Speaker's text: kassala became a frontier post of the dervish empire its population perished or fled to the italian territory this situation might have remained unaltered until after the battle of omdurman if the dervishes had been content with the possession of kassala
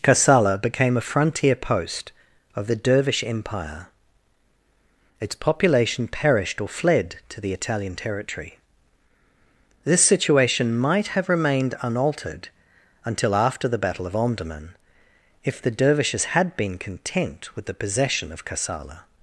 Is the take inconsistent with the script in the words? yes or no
no